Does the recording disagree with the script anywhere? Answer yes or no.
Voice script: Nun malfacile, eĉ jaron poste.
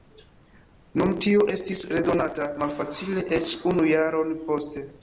yes